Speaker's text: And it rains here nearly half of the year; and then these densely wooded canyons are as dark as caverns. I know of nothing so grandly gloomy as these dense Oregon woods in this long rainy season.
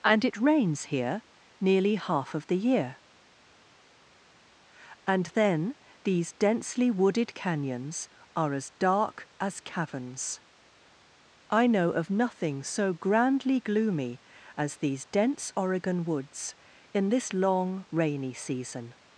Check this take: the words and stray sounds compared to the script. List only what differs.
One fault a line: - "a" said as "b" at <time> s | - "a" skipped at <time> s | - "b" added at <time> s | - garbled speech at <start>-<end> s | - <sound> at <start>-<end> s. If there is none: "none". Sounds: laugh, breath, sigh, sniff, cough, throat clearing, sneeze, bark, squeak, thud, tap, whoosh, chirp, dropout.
none